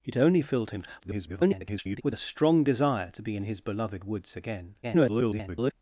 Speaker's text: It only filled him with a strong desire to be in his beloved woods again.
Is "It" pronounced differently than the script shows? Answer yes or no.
no